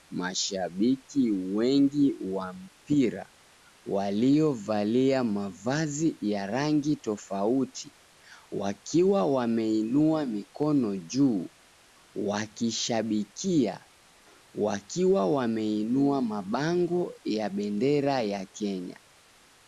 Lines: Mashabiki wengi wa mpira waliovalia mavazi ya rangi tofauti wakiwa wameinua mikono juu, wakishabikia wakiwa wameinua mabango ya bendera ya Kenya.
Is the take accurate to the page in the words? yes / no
yes